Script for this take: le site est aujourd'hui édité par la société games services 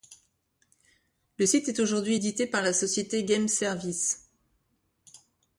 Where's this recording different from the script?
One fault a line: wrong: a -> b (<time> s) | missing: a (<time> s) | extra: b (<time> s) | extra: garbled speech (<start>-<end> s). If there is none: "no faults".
no faults